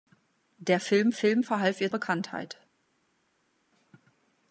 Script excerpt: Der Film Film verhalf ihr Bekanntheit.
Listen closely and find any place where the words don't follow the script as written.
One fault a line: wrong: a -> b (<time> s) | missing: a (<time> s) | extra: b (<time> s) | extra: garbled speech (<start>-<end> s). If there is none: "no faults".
no faults